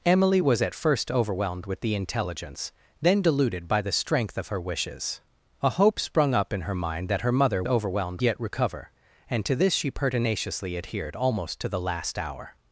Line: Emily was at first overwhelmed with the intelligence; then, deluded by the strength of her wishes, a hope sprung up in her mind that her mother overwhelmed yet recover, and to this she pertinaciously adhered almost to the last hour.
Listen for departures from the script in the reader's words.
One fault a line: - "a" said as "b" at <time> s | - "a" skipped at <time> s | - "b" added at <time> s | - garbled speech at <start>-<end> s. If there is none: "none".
none